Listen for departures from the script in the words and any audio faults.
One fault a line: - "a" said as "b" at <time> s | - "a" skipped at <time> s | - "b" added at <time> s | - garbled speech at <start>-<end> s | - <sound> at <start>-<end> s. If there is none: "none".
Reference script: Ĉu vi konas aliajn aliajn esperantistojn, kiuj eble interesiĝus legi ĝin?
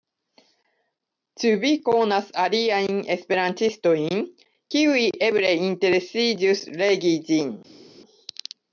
- "aliajn" skipped at 3.0 s